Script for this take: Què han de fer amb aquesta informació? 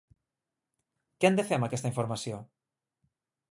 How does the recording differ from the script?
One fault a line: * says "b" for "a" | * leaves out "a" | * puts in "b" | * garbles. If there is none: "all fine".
all fine